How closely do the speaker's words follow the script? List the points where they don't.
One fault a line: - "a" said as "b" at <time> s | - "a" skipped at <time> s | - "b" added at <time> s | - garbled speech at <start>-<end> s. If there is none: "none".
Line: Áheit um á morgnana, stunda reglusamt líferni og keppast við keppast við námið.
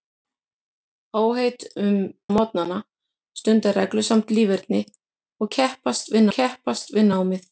none